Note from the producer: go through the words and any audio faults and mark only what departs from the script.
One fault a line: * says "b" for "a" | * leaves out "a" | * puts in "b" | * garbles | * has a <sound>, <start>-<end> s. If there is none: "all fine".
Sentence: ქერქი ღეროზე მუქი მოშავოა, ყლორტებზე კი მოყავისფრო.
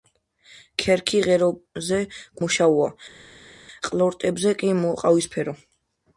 * leaves out "მუქი"